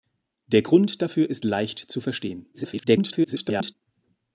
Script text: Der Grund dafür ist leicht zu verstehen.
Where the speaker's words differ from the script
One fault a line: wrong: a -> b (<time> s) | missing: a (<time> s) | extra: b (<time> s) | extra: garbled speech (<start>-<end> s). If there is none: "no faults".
extra: garbled speech (2.5-3.7 s)